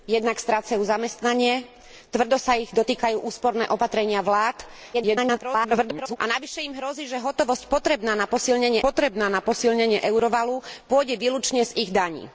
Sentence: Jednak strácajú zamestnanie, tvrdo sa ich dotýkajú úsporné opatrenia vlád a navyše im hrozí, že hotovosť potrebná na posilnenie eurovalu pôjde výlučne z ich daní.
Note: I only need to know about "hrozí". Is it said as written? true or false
true